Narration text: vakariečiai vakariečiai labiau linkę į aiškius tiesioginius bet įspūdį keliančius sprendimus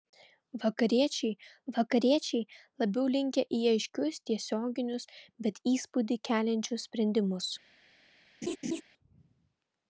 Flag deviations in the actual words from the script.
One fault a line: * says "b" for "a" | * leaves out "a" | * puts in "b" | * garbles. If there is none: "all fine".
all fine